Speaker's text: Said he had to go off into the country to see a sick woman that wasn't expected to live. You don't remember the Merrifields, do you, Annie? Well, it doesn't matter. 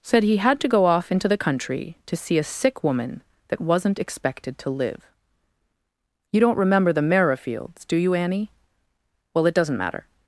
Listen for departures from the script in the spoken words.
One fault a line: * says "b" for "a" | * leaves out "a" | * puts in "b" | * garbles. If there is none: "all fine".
all fine